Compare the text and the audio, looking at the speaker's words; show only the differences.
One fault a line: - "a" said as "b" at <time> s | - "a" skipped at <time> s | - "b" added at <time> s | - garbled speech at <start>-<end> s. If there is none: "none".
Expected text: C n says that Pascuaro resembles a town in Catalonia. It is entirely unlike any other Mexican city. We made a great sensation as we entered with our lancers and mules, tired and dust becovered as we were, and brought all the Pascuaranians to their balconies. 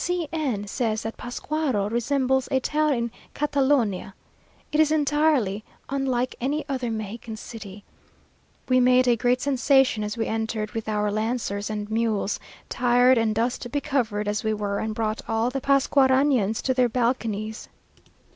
none